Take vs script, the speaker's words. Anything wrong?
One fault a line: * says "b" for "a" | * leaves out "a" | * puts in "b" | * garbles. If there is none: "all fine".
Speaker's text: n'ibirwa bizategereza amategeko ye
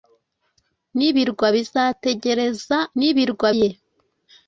* says "n'ibirwa" for "amategeko"